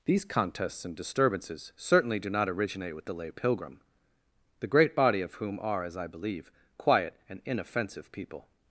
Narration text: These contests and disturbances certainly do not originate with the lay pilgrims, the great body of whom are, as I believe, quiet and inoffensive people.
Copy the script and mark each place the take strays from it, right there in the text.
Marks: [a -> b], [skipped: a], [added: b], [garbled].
These contests and disturbances certainly do not originate with the lay [pilgrims, -> pilgrim] the great body of whom are, as I believe, quiet and inoffensive people.